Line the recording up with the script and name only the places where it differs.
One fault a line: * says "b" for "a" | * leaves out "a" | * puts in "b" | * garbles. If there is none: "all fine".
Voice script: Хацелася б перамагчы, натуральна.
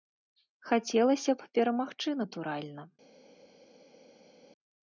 all fine